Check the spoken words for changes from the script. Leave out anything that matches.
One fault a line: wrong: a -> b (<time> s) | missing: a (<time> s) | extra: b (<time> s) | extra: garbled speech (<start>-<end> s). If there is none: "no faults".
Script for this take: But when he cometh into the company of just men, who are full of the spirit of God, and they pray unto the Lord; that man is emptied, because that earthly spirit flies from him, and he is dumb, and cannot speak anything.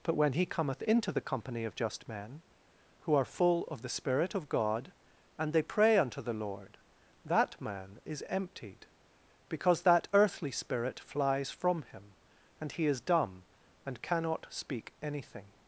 no faults